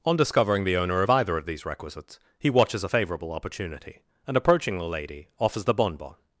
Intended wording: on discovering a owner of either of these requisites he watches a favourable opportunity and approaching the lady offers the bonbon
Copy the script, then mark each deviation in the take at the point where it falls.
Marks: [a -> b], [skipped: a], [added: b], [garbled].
on discovering [a -> the] owner of either of these requisites he watches a favourable opportunity and approaching the lady offers the bonbon